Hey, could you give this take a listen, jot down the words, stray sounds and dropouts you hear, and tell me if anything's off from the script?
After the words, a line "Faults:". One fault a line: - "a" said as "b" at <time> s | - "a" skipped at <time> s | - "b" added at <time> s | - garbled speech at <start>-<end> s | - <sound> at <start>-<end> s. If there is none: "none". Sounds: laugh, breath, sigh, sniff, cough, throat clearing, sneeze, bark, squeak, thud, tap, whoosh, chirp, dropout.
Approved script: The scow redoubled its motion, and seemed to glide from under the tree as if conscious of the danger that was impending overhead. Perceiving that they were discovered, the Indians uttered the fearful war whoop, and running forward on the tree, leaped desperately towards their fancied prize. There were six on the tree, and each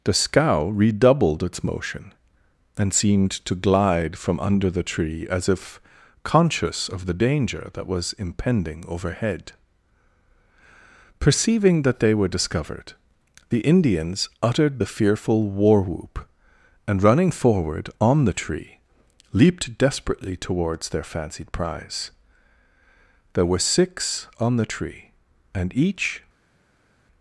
The scow redoubled its motion, and seemed to glide from under the tree as if conscious of the danger that was impending overhead. Perceiving that they were discovered, the Indians uttered the fearful war whoop, and running forward on the tree, leaped desperately towards their fancied prize. There were six on the tree, and each
Faults:
none